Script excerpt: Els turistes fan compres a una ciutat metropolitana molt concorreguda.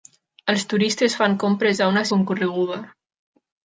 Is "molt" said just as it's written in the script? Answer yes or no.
no